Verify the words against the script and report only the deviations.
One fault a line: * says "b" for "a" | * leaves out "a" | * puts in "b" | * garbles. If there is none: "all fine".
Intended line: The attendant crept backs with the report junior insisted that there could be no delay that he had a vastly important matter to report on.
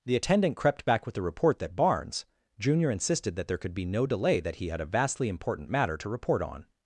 * says "back" for "backs"
* puts in "that Barnes"